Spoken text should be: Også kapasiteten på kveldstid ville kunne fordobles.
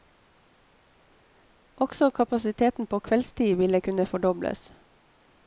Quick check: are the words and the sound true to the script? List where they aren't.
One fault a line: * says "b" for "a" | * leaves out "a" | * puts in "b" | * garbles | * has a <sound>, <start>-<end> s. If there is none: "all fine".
all fine